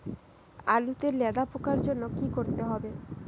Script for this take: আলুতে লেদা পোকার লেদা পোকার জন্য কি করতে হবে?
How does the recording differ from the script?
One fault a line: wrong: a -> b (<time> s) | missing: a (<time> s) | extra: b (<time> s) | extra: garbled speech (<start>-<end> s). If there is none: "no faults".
missing: লেদা পোকার (1.8 s)